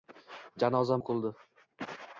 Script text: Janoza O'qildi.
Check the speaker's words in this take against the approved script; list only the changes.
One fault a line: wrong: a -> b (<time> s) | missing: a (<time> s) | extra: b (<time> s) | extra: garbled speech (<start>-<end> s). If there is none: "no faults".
no faults